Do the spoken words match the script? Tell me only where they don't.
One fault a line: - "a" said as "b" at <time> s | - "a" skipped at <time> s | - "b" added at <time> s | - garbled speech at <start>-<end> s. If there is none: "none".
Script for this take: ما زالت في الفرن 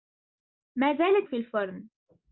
none